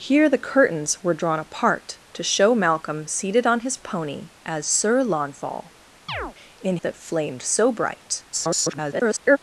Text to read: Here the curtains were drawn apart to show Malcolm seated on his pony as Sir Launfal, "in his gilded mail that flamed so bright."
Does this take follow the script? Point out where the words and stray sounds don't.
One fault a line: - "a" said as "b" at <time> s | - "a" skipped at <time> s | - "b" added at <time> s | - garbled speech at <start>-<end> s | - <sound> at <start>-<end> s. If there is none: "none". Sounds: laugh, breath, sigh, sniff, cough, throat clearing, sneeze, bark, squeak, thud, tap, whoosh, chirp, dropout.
- chirp at 6.1-6.3 s
- "his gilded mail" skipped at 6.8 s
- garbled speech at 8.3-9.4 s